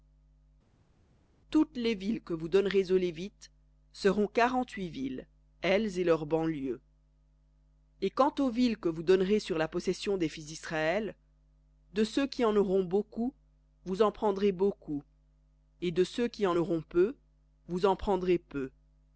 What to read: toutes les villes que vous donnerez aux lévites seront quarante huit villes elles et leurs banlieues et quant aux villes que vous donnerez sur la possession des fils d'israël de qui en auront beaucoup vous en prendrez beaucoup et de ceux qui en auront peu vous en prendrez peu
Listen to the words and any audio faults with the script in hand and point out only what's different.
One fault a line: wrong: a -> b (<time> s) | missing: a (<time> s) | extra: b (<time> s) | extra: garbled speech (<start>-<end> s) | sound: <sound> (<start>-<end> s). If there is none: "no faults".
extra: ceux (12.0 s)